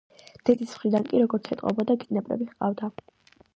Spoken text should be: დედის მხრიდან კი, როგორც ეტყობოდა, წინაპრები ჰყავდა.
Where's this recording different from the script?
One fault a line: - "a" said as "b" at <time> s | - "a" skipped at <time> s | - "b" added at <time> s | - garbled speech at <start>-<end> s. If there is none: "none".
none